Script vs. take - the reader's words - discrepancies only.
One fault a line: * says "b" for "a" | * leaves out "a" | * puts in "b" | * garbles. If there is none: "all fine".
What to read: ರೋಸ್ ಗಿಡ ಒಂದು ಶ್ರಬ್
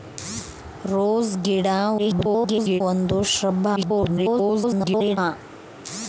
* garbles
* garbles